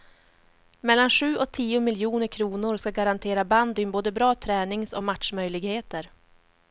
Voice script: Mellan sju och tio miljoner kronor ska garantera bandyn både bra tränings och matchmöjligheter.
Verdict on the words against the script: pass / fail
pass